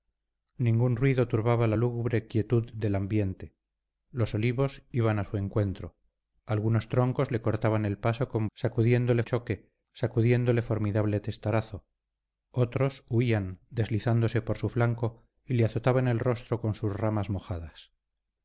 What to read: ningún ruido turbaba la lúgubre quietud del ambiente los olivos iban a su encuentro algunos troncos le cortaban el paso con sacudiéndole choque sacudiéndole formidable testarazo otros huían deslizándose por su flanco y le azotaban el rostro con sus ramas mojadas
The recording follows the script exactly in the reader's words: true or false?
true